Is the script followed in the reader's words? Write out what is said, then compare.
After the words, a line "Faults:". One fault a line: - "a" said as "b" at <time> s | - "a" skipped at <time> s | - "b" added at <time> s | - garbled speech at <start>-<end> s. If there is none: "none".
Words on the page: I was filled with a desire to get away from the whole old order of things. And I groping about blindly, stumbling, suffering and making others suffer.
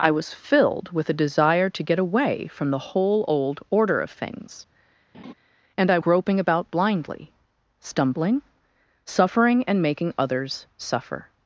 I was filled with a desire to get away from the whole old order of things. And I groping about blindly, stumbling, suffering and making others suffer.
Faults:
none